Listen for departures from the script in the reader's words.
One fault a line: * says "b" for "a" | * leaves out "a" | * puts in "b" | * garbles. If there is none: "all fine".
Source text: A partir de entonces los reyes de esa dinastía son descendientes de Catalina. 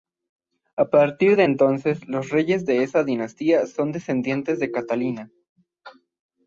all fine